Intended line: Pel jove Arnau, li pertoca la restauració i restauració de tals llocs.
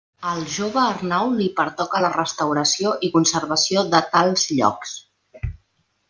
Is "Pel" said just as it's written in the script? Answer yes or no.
no